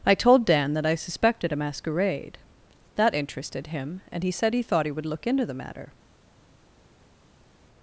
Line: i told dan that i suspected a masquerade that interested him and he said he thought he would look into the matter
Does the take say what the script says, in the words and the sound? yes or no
yes